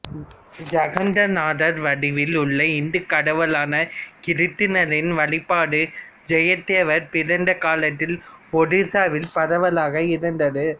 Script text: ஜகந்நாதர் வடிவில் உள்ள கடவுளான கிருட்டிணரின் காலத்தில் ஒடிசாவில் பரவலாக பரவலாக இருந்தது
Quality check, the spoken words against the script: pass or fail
fail